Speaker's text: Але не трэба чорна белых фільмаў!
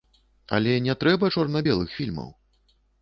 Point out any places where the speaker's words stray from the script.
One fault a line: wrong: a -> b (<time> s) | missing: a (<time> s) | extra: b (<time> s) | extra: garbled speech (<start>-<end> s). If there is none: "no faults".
no faults